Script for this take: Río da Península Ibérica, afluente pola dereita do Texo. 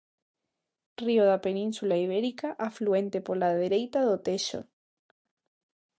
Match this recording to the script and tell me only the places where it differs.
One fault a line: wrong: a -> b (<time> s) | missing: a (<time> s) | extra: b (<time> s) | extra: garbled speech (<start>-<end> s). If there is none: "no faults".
no faults